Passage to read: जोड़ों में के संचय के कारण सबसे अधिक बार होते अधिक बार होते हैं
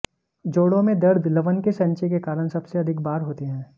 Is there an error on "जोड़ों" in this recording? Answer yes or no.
no